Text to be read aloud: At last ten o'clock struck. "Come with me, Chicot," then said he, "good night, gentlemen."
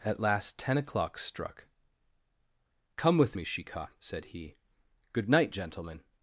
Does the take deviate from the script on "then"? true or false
true